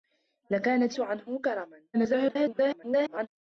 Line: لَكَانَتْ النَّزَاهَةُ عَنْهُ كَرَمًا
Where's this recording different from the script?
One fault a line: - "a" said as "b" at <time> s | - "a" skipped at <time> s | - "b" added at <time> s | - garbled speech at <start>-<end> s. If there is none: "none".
- "النَّزَاهَةُ" skipped at 1.0 s
- garbled speech at 1.9-3.3 s